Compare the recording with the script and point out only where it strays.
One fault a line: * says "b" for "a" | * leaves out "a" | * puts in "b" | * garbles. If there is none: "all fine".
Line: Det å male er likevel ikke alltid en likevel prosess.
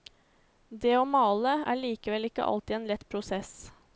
* says "lett" for "likevel"